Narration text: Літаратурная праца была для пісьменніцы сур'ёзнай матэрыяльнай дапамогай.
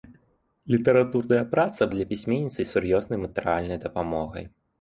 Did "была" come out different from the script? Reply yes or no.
yes